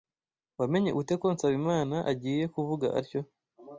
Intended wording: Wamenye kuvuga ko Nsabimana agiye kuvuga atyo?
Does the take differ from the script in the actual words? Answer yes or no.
yes